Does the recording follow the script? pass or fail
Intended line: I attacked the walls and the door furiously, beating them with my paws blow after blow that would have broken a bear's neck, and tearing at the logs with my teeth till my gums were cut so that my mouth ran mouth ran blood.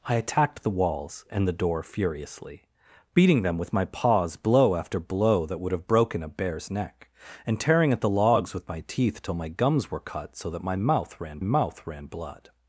pass